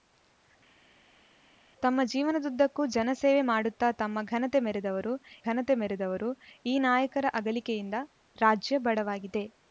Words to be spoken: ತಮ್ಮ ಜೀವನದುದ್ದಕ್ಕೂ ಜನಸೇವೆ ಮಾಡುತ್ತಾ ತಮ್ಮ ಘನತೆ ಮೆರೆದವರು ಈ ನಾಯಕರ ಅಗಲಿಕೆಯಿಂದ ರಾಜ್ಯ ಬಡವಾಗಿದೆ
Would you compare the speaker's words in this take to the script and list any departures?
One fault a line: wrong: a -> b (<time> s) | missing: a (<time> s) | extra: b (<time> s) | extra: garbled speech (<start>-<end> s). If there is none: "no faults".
extra: ಘನತೆ ಮೆರೆದವರು (5.4 s)